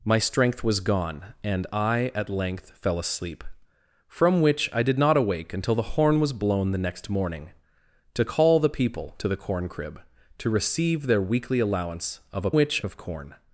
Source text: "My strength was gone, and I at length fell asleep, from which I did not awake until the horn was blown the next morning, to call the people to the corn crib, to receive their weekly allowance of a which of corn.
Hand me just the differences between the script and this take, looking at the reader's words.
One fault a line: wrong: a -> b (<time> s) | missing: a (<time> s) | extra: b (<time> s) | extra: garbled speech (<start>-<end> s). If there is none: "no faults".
no faults